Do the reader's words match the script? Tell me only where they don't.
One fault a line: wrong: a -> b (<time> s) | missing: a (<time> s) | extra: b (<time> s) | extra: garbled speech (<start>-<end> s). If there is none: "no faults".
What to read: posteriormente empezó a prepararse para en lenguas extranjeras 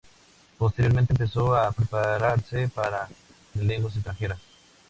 no faults